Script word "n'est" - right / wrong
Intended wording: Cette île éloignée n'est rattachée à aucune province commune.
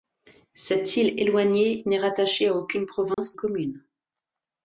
right